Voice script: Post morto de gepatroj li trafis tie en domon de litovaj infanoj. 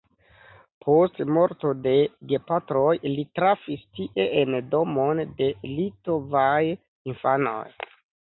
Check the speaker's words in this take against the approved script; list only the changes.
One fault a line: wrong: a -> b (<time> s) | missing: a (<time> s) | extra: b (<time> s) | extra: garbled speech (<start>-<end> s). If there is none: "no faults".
no faults